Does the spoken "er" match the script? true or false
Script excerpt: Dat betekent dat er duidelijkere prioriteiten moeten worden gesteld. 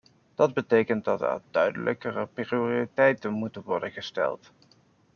true